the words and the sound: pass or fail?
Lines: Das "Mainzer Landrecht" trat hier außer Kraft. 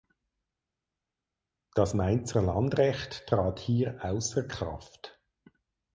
pass